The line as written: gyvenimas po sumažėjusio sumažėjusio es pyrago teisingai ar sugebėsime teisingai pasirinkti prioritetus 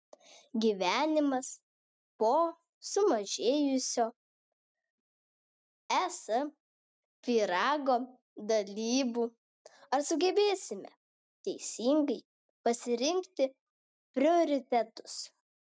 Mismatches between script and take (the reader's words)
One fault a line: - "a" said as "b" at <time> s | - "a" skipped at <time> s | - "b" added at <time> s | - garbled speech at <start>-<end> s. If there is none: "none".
- "sumažėjusio" skipped at 4.0 s
- "teisingai" said as "dalybų" at 8.5 s